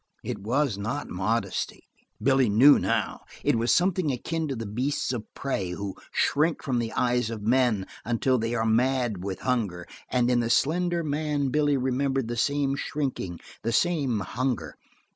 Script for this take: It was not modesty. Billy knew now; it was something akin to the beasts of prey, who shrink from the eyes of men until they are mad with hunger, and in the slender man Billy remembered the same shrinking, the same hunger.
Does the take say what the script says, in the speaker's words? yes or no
yes